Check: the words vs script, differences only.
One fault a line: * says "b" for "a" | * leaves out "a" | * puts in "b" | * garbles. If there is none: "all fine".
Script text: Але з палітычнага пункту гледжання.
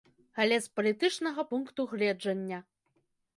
all fine